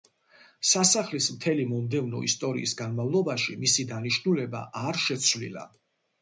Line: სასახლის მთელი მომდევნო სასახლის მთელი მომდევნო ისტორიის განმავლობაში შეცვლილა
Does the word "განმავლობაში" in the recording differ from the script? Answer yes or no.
yes